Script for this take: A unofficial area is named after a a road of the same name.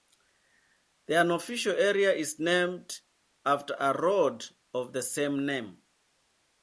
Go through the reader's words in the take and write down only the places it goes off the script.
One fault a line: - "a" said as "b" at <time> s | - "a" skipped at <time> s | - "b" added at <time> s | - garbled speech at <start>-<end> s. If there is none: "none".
- "A" said as "The" at 1.1 s
- "a" skipped at 3.9 s